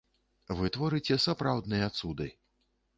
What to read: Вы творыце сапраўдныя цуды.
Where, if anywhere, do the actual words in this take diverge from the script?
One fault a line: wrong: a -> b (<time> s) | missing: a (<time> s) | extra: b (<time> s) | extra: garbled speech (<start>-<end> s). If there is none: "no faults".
no faults